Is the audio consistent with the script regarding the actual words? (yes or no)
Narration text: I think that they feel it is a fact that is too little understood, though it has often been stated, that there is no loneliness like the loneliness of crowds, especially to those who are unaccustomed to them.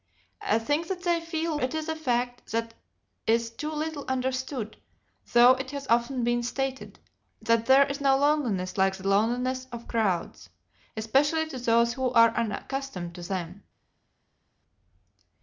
yes